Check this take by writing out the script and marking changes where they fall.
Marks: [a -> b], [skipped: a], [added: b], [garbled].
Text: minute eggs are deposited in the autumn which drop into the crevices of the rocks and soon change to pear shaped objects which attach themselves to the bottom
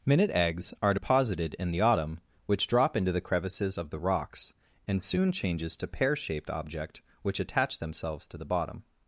minute eggs are deposited in the autumn which drop into the crevices of the rocks and soon [change -> changes] to pear shaped [objects -> object] which attach themselves to the bottom